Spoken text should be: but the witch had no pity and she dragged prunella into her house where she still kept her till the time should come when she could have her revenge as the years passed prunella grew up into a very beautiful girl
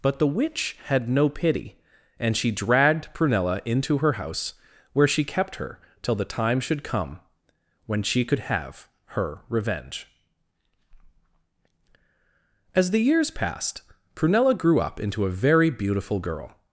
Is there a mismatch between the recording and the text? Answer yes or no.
yes